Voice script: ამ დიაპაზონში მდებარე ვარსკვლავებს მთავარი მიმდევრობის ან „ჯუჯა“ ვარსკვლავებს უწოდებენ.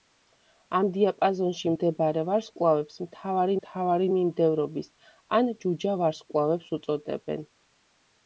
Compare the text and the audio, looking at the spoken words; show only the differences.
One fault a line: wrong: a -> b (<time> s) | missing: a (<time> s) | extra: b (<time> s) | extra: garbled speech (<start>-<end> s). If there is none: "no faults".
extra: მთავარი (3.6 s)